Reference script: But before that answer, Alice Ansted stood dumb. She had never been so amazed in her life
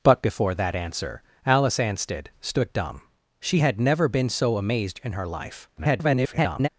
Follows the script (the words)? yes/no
no